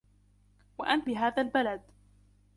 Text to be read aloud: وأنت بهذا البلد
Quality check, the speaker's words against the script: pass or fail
pass